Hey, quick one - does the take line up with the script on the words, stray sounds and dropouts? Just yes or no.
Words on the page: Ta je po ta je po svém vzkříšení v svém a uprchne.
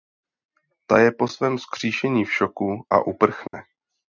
no